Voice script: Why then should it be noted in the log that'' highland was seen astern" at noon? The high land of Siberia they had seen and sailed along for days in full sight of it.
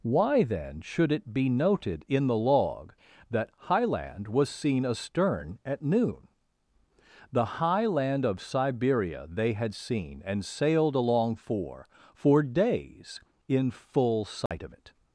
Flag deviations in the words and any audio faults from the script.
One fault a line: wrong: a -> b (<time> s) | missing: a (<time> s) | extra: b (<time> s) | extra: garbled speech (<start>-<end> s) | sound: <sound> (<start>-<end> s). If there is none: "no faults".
extra: for (12.1 s)
sound: dropout (14.5-14.5 s)